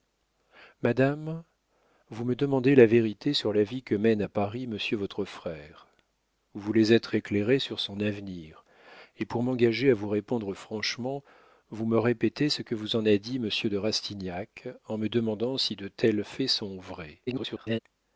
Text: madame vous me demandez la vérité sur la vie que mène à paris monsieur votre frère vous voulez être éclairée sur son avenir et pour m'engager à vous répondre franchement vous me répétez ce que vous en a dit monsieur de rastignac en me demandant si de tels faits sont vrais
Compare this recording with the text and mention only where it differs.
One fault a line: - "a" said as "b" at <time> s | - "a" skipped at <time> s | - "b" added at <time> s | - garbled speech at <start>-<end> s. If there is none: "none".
- garbled speech at 17.3-17.8 s